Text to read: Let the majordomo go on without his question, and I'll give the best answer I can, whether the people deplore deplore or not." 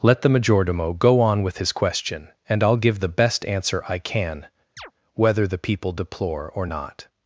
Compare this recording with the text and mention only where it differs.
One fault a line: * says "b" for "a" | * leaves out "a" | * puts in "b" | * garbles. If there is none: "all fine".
* says "with" for "without"
* leaves out "deplore"